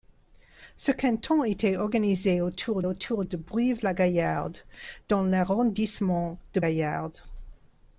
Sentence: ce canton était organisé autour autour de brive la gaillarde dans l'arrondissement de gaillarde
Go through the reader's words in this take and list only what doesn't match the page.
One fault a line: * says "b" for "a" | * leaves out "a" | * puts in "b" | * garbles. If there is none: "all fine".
all fine